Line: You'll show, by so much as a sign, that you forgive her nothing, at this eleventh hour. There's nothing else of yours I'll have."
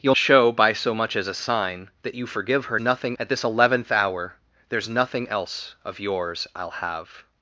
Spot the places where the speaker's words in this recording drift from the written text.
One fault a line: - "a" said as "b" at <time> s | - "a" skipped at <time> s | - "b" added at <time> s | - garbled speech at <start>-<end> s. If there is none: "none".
none